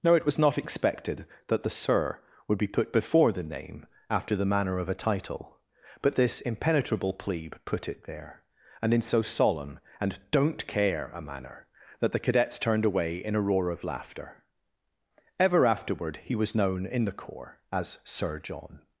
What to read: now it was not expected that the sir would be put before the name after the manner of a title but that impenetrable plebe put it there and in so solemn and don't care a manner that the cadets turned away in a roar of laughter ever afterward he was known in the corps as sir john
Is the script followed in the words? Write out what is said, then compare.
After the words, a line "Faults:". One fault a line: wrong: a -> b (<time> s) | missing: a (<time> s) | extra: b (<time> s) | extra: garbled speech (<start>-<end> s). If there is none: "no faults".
now it was not expected that the sir would be put before the name after the manner of a title but this impenetrable plebe put it there and in so solemn and don't care a manner that the cadets turned away in a roar of laughter ever afterward he was known in the corps as sir john
Faults:
wrong: that -> this (6.2 s)